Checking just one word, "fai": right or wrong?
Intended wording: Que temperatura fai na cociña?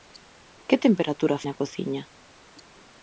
wrong